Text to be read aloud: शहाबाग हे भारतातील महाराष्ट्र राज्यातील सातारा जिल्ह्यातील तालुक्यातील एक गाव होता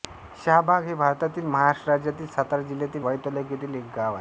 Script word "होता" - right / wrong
wrong